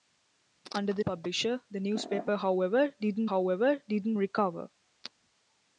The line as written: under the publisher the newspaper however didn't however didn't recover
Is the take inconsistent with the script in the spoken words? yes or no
no